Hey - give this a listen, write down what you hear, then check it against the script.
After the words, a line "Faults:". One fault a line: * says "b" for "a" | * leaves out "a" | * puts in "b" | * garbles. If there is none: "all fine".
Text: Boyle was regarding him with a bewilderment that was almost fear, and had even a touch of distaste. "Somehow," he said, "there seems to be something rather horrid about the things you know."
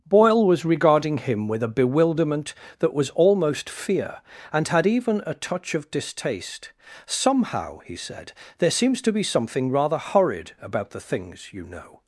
Boyle was regarding him with a bewilderment that was almost fear, and had even a touch of distaste. "Somehow," he said, "there seems to be something rather horrid about the things you know."
Faults:
all fine